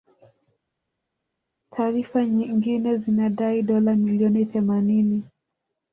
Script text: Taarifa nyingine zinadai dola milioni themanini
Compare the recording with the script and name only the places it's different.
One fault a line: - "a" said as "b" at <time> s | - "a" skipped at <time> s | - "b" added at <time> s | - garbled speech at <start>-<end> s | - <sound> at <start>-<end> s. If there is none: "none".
none